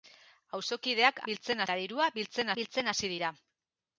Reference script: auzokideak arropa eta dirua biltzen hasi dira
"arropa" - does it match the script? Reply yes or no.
no